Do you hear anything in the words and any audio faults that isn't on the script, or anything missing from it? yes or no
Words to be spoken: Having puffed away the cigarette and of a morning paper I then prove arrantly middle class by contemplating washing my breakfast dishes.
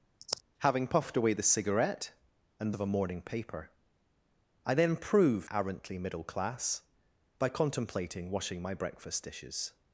yes